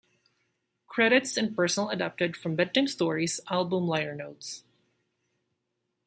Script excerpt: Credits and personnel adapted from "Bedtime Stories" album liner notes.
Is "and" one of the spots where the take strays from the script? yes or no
no